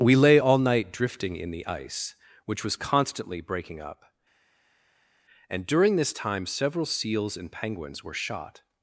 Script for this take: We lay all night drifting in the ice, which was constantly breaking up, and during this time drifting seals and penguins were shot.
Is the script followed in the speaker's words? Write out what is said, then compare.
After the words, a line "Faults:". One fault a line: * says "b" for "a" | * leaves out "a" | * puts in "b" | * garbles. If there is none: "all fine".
We lay all night drifting in the ice, which was constantly breaking up, and during this time several seals and penguins were shot.
Faults:
* says "several" for "drifting"